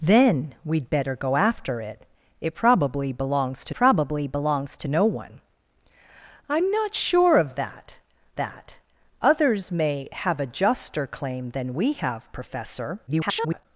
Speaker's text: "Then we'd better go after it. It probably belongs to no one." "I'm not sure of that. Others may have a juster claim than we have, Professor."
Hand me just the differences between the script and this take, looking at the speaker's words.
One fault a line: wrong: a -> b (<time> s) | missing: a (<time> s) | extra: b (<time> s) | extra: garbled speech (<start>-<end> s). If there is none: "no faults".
extra: probably belongs to (3.7 s)
extra: that (8.4 s)
extra: garbled speech (13.1-13.7 s)